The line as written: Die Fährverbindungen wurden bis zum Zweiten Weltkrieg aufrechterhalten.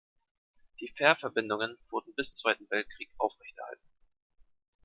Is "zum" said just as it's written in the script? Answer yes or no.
no